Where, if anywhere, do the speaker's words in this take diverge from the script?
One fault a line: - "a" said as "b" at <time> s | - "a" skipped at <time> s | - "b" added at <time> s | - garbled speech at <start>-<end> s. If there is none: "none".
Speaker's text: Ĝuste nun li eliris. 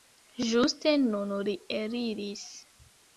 none